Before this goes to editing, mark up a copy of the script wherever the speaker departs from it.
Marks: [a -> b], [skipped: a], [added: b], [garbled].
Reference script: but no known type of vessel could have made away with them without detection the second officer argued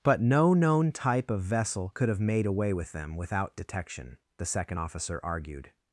but no known type of vessel could have made away with them without detection the second officer argued